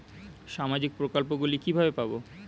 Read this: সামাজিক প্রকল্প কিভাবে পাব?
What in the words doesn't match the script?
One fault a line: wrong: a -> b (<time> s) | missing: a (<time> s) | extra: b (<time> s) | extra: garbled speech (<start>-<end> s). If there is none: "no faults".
extra: গুলি (1.4 s)